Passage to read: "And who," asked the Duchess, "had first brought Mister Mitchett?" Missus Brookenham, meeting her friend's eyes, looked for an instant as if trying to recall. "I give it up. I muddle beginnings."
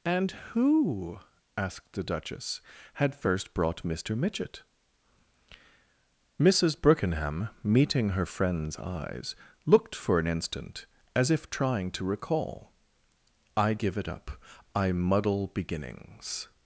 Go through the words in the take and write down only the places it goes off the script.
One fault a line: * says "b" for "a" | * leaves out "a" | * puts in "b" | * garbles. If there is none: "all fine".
all fine